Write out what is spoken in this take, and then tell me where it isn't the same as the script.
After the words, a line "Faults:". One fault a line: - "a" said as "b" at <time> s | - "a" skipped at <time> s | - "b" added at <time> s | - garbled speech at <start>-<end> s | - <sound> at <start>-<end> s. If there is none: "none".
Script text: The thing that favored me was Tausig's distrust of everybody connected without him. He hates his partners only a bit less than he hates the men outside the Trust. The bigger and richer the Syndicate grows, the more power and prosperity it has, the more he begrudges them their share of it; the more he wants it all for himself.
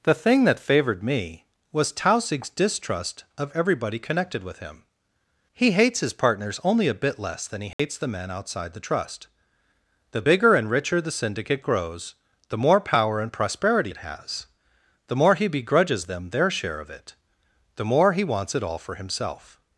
The thing that favored me was Tausig's distrust of everybody connected with him. He hates his partners only a bit less than he hates the men outside the Trust. The bigger and richer the Syndicate grows, the more power and prosperity it has, the more he begrudges them their share of it; the more he wants it all for himself.
Faults:
- "without" said as "with" at 4.4 s
- dropout at 7.7-7.8 s